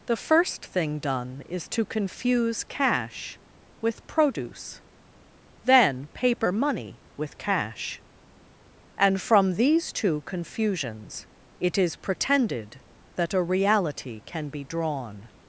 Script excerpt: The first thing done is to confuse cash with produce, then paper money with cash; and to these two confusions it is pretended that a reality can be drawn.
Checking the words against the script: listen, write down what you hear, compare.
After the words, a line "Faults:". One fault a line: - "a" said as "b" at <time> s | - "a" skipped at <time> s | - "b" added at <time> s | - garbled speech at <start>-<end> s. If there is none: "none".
The first thing done is to confuse cash with produce, then paper money with cash; and from these two confusions it is pretended that a reality can be drawn.
Faults:
- "to" said as "from" at 9.2 s